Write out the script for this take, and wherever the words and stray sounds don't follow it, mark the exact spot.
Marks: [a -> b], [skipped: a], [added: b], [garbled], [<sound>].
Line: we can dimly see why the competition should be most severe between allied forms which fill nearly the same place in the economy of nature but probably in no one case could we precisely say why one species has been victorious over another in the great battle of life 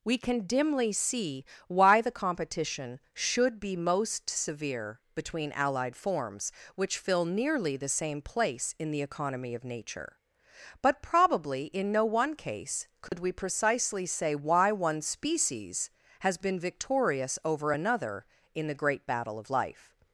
we can dimly see why the competition should be most severe between allied forms which fill nearly the same place in the economy of nature but probably in no one case could [dropout] we precisely say why one species has been victorious over another in the great battle of life